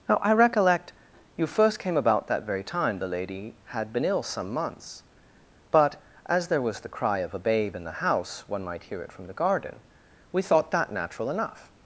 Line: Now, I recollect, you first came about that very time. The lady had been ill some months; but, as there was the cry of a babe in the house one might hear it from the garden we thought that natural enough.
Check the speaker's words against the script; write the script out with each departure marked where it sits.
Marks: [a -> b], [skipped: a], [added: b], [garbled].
Now, I recollect, you first came about that very time. The lady had been ill some months; but, as there was the cry of a babe in the house one might hear it from the garden we thought that natural enough.